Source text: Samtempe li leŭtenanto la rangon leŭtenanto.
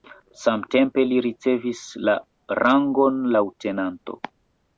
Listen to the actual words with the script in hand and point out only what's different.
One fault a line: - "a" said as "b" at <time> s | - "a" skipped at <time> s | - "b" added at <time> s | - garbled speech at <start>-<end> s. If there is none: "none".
- "leŭtenanto" said as "ricevis" at 1.2 s